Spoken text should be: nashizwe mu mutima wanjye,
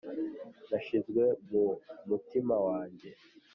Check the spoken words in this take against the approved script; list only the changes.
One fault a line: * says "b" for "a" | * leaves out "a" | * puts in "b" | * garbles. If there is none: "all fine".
all fine